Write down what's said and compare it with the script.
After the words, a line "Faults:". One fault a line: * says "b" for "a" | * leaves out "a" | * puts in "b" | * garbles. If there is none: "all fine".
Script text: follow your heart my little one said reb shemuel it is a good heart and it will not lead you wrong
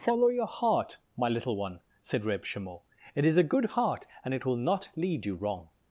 follow your heart my little one said reb shemuel it is a good heart and it will not lead you wrong
Faults:
all fine